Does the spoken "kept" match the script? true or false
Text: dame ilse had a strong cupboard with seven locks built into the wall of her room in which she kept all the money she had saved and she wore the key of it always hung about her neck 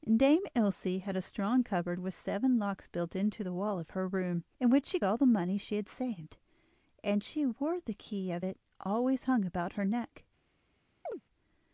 false